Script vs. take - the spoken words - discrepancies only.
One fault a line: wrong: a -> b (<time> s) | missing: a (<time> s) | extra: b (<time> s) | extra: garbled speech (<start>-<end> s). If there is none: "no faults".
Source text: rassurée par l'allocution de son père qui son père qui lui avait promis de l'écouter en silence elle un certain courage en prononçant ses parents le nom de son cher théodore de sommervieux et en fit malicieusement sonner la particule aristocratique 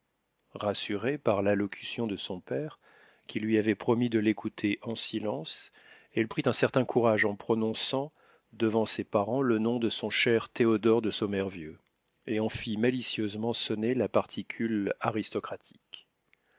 missing: son père qui (3.4 s)
extra: prit (6.3 s)
extra: devant (8.5 s)